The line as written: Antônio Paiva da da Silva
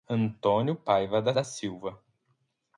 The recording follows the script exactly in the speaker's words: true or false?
true